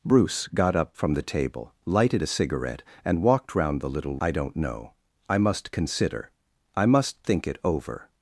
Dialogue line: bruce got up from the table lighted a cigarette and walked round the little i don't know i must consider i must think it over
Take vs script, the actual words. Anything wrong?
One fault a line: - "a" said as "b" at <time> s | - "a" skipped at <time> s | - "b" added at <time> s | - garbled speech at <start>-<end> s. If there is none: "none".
none